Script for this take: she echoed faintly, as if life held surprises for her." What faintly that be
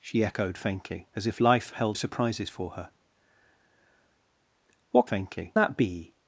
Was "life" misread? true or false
false